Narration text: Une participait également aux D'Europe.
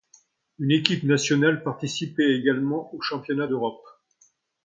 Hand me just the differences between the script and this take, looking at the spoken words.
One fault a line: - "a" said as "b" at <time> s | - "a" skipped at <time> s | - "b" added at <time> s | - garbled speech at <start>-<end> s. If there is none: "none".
- "équipe nationale" added at 0.7 s
- "Championnats" added at 3.0 s